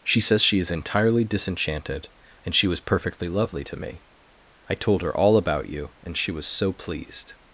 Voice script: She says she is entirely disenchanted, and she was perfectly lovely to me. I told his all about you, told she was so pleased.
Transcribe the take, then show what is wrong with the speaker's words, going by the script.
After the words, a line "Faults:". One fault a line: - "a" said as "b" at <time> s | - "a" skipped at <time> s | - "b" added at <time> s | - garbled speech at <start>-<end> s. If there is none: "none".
She says she is entirely disenchanted, and she was perfectly lovely to me. I told her all about you, and she was so pleased.
Faults:
- "his" said as "her" at 5.0 s
- "told" said as "and" at 6.0 s